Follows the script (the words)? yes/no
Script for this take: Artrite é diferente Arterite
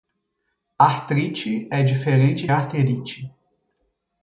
yes